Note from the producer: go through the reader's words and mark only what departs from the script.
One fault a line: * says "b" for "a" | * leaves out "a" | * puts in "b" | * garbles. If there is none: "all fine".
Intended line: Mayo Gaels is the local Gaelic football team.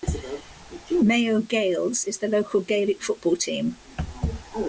all fine